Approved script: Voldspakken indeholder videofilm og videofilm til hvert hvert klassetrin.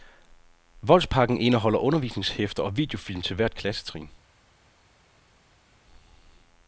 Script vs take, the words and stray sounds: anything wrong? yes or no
yes